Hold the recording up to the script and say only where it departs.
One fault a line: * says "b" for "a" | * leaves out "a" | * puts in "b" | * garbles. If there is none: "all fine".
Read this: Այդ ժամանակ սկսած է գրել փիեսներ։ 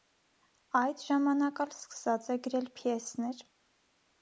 * puts in "ալ"